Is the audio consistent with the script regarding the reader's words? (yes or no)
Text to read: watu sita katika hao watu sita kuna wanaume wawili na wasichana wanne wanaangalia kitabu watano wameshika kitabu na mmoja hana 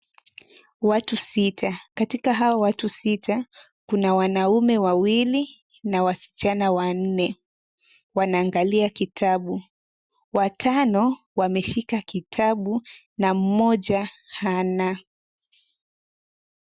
yes